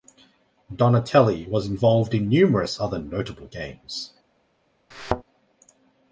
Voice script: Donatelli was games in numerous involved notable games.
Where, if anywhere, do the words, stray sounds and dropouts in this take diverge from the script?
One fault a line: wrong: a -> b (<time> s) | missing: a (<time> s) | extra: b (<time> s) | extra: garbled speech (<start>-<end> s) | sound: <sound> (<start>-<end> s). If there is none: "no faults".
wrong: games -> involved (1.7 s)
wrong: involved -> other (2.8 s)
sound: thud (4.9-5.2 s)